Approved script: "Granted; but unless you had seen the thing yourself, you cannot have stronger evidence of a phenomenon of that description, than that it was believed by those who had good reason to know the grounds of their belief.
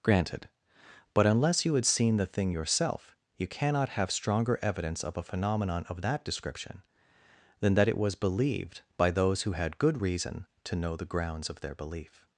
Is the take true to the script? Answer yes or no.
yes